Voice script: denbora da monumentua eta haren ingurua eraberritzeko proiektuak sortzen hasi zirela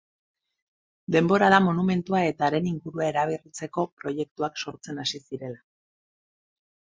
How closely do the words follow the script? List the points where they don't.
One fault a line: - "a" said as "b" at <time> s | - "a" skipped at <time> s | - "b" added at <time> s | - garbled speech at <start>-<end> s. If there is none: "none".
none